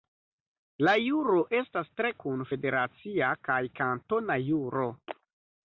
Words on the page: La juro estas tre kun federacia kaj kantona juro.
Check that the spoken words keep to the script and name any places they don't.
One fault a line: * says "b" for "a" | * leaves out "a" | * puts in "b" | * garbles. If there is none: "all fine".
all fine